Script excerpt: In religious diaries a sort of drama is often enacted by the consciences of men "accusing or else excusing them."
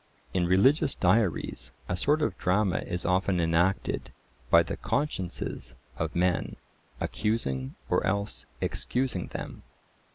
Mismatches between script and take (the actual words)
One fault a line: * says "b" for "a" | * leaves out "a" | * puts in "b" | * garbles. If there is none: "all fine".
all fine